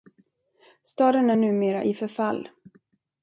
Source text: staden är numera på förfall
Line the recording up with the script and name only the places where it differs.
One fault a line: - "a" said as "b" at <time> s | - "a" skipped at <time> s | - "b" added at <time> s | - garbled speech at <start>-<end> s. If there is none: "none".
- "på" said as "i" at 1.8 s